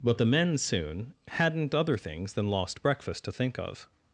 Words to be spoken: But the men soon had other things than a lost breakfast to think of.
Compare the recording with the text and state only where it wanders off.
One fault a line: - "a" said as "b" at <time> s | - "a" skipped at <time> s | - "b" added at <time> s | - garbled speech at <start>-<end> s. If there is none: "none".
- "had" said as "hadn't" at 1.3 s
- "a" skipped at 2.5 s